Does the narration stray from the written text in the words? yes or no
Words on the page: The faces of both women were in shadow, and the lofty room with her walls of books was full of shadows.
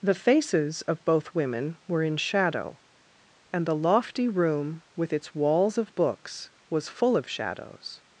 yes